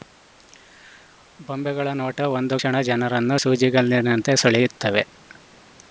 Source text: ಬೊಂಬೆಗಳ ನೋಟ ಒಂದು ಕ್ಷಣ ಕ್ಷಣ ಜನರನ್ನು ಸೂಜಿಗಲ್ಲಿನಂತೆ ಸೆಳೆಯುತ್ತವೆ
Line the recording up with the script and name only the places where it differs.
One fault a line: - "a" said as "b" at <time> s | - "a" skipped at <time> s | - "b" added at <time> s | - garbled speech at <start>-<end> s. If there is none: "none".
- "ಕ್ಷಣ" skipped at 2.8 s